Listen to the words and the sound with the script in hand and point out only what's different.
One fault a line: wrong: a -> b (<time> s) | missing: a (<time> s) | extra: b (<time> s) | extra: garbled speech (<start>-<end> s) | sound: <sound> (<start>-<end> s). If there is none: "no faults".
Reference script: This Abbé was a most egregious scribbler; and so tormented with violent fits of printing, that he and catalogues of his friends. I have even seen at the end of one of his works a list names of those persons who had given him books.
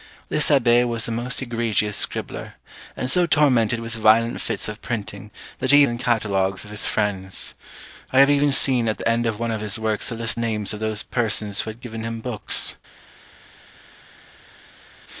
no faults